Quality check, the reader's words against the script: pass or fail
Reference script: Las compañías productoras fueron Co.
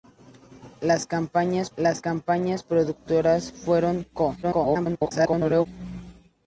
fail